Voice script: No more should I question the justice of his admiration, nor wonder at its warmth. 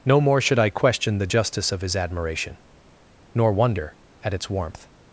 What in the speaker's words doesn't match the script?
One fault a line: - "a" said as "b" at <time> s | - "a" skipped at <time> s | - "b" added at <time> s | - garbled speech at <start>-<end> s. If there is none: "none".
none